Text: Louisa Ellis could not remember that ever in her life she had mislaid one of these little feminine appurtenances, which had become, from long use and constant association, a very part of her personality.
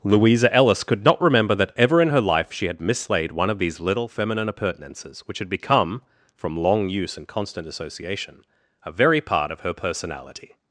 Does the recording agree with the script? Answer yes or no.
yes